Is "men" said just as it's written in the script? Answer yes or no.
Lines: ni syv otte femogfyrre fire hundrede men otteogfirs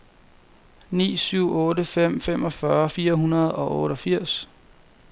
no